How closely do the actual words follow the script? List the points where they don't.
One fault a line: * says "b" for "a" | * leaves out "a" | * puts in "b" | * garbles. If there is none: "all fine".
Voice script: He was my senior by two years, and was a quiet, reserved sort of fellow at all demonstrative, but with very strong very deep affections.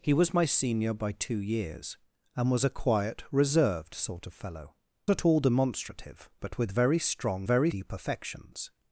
all fine